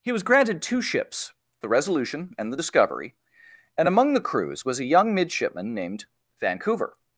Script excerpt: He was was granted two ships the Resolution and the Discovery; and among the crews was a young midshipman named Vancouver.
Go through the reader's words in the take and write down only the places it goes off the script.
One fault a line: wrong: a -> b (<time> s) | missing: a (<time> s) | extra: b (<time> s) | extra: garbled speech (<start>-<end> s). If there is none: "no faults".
missing: was (0.2 s)